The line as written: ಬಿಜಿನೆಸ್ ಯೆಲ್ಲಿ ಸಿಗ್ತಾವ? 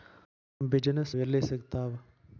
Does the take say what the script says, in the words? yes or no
yes